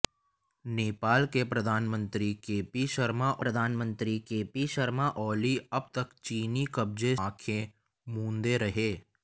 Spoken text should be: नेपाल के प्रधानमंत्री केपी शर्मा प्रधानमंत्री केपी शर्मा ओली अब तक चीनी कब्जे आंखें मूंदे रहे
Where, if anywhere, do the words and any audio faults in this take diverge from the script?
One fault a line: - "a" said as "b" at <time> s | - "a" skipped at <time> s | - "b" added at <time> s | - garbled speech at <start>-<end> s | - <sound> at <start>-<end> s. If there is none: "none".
none